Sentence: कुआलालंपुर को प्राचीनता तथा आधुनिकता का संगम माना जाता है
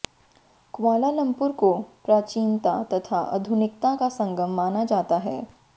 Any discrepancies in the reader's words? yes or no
no